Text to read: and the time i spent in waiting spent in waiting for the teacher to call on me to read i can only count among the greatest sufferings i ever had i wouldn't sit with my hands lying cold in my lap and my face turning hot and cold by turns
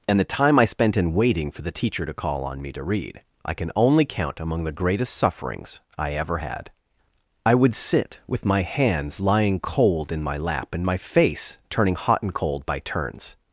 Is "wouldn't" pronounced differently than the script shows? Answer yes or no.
yes